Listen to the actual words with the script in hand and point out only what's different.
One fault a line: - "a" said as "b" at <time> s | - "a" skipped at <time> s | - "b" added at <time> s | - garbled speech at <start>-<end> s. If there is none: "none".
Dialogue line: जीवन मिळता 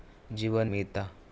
none